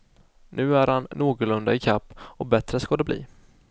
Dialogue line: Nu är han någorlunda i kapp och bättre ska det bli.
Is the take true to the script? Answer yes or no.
yes